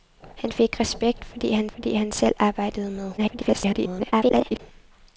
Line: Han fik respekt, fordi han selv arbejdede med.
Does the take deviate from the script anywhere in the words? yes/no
yes